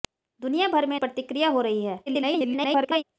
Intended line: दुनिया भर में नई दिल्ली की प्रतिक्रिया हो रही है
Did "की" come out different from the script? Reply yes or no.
yes